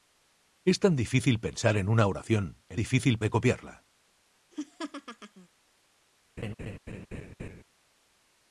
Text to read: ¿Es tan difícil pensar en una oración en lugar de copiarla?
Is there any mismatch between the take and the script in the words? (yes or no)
yes